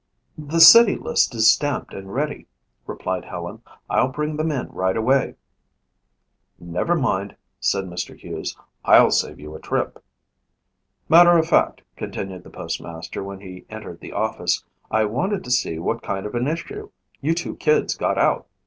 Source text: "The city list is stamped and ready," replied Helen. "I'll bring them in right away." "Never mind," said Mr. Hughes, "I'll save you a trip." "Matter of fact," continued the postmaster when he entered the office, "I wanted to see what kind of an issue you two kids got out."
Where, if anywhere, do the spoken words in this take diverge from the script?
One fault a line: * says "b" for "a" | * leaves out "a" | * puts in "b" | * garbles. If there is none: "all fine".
all fine